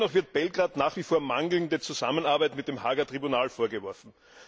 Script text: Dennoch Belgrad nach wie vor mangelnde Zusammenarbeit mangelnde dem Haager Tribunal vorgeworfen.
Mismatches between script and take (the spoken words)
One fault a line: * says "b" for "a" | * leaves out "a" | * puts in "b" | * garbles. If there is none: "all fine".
* puts in "wird"
* says "mit" for "mangelnde"